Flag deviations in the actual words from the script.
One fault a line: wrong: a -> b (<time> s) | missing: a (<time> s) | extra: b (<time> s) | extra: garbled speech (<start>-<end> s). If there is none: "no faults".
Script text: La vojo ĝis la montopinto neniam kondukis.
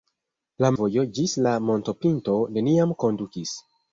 no faults